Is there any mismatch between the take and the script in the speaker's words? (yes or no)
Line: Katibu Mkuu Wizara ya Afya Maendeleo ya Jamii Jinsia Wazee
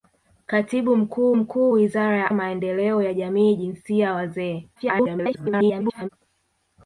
yes